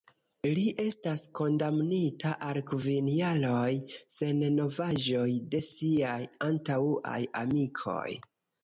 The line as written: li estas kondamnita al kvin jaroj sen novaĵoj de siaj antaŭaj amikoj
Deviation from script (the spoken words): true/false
false